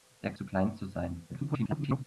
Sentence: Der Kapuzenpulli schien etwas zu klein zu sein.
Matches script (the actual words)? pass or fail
fail